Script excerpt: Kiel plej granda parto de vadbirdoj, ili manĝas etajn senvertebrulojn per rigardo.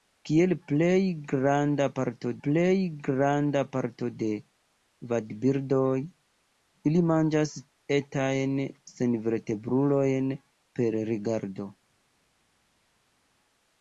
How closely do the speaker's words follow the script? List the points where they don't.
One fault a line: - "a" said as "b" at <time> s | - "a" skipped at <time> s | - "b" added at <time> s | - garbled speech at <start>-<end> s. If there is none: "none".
- "plej granda parto" added at 2.4 s